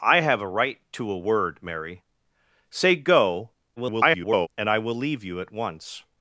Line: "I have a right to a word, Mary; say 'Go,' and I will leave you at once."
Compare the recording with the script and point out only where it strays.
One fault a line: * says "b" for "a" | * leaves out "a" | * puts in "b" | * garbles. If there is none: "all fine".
* garbles